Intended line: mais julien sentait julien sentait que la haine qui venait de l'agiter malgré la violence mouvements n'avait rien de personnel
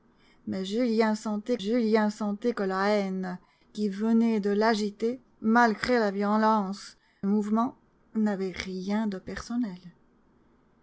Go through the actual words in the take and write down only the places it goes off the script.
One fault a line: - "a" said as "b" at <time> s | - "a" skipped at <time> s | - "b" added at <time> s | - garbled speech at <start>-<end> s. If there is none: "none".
none